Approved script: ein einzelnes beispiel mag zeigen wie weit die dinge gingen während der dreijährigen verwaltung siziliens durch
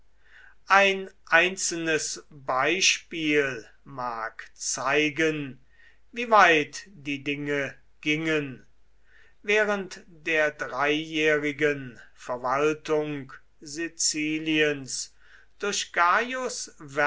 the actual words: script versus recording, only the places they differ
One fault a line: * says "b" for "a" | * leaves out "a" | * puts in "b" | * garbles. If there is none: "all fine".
all fine